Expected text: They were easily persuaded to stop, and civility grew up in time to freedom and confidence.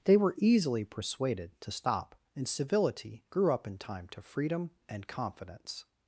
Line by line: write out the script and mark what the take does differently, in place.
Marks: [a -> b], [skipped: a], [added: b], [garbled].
They were easily persuaded to stop, and civility grew up in time to freedom and confidence.